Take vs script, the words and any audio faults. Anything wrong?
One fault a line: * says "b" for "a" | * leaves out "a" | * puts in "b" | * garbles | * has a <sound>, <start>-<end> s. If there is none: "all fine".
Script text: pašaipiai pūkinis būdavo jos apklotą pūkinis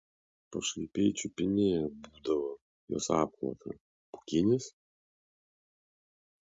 * says "čiupinėja" for "pūkinis"